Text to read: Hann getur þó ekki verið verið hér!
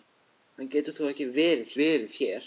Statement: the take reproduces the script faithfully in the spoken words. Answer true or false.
true